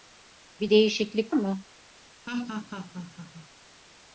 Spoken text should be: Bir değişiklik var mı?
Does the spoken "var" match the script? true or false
false